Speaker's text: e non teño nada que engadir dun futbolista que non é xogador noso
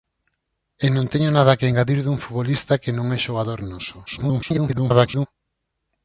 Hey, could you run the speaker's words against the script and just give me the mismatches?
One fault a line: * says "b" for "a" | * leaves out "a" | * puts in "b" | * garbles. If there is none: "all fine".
* garbles